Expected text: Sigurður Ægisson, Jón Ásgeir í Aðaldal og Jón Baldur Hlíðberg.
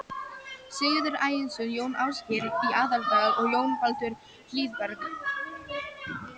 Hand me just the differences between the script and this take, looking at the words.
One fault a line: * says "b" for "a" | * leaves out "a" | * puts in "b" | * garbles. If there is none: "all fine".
all fine